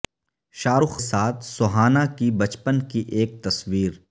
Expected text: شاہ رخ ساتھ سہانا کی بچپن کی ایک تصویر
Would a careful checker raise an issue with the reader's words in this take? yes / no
no